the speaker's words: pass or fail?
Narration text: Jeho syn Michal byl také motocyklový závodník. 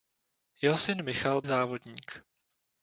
fail